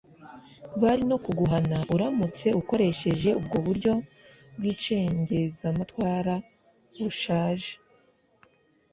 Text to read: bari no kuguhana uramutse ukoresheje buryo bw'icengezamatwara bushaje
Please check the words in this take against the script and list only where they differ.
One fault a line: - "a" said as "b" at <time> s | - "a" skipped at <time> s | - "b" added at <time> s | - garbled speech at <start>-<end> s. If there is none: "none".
- "ubwo" added at 3.4 s